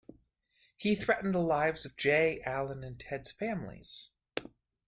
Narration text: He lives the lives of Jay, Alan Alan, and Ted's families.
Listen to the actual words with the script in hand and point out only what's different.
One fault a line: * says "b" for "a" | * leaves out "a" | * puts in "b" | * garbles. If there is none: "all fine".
* says "threatened" for "lives"
* leaves out "Alan"